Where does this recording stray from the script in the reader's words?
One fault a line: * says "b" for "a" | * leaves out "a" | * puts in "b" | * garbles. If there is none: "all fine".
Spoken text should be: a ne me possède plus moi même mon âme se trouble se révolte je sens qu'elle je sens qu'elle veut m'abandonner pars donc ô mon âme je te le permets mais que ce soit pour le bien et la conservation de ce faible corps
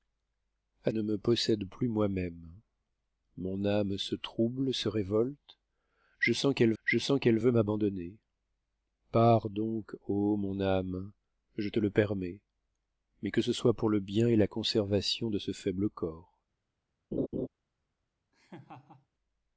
all fine